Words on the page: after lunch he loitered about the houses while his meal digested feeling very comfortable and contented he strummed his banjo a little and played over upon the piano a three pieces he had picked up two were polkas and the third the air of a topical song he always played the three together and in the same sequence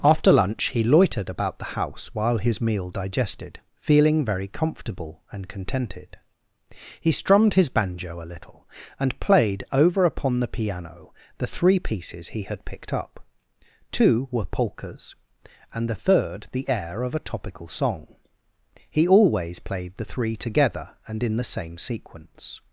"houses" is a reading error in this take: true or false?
true